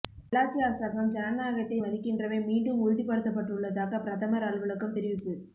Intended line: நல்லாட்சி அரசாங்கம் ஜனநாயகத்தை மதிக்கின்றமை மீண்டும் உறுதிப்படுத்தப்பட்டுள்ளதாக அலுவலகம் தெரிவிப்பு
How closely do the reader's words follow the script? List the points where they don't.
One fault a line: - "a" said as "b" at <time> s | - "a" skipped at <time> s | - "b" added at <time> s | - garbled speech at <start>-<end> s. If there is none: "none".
- "பிரதமர்" added at 4.0 s